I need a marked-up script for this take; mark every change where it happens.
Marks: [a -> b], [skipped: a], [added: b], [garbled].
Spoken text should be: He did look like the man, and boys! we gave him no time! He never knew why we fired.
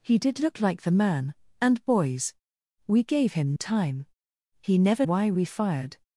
He did look like the man, and boys! we gave him [skipped: no] time! He never [skipped: knew] why we fired.